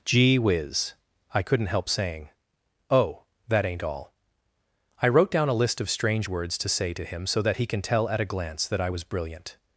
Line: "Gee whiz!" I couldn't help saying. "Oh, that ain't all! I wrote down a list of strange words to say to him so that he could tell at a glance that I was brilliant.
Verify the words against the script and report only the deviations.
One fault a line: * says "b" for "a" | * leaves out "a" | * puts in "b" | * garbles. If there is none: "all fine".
* says "can" for "could"